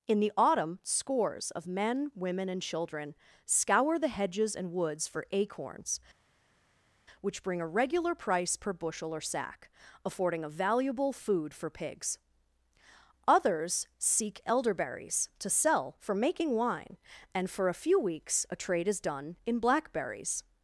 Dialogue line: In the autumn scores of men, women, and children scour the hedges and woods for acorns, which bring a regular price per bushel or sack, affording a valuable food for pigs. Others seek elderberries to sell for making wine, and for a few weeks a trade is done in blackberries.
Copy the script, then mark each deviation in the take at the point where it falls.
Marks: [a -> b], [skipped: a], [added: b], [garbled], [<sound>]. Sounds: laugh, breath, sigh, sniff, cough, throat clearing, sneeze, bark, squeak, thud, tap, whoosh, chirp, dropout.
In the autumn scores of men, women, and children scour the hedges and woods for acorns, which bring a regular price per bushel or sack, affording a valuable food for pigs. Others seek elderberries to sell for making wine, and for a few weeks a trade is done in blackberries.